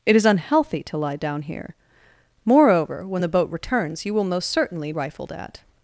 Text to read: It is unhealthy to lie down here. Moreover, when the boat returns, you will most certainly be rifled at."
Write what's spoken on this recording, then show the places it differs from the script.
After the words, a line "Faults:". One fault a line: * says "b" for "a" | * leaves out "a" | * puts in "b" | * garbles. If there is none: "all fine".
It is unhealthy to lie down here. Moreover, when the boat returns, you will most certainly rifled at."
Faults:
* leaves out "be"